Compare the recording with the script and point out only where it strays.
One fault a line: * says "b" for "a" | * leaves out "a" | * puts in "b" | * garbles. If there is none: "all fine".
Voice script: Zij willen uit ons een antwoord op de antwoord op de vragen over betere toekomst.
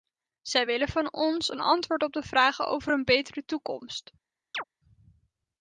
* says "van" for "uit"
* leaves out "antwoord op de"
* puts in "een"